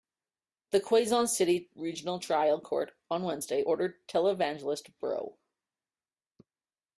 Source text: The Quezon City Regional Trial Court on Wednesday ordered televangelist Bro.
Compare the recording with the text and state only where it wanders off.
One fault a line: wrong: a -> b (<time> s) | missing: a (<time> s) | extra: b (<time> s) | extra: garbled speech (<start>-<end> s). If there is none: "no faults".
no faults